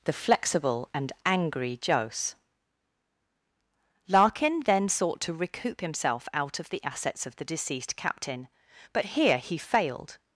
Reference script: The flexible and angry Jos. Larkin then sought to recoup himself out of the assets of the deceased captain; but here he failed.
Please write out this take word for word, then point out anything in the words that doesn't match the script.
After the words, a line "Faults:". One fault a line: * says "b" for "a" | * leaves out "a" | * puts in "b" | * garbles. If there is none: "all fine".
The flexible and angry Jos. Larkin then sought to recoup himself out of the assets of the deceased captain; but here he failed.
Faults:
all fine